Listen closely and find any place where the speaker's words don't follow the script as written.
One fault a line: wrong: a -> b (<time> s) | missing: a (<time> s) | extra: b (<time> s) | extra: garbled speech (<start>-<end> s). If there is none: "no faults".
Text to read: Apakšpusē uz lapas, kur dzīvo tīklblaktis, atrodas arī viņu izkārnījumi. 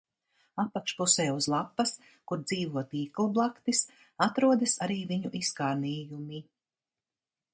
no faults